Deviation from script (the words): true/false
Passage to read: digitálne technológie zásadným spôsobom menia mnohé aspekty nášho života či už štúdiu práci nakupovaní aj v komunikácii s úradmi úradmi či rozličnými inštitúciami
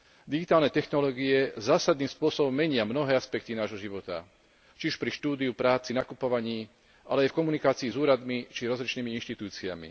true